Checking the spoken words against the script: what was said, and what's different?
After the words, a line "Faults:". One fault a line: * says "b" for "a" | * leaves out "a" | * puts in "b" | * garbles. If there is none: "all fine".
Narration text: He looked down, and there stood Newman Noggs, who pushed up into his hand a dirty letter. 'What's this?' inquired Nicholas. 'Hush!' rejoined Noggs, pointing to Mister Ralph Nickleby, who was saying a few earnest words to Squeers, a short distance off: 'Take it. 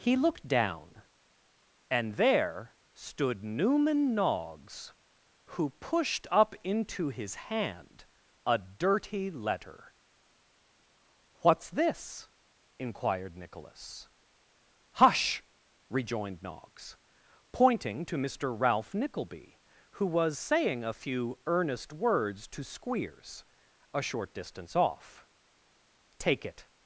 He looked down, and there stood Newman Noggs, who pushed up into his hand a dirty letter. 'What's this?' inquired Nicholas. 'Hush!' rejoined Noggs, pointing to Mister Ralph Nickleby, who was saying a few earnest words to Squeers, a short distance off: 'Take it.
Faults:
all fine